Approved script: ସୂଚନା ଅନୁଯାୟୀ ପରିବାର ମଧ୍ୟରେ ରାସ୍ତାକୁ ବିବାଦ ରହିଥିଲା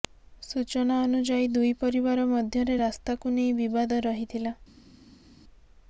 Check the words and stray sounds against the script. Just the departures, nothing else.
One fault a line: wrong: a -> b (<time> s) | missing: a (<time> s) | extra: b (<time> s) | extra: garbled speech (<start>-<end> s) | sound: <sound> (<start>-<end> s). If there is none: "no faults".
extra: ଦୁଇ (1.5 s)
extra: ନେଇ (3.4 s)